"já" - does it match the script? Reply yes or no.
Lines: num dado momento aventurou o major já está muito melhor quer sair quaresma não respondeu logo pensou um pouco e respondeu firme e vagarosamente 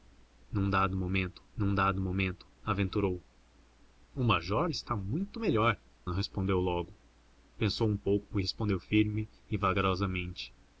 no